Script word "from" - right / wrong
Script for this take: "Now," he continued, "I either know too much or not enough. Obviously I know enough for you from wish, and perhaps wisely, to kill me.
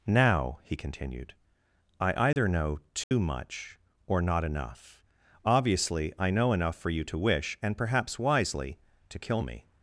wrong